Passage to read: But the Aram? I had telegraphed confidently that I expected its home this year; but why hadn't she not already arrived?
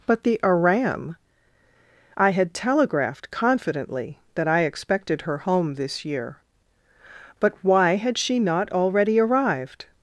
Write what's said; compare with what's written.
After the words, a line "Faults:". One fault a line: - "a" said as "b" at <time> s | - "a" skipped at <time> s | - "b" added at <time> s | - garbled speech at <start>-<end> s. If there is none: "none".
But the Aram? I had telegraphed confidently that I expected her home this year; but why had she not already arrived?
Faults:
- "its" said as "her" at 5.2 s
- "hadn't" said as "had" at 8.0 s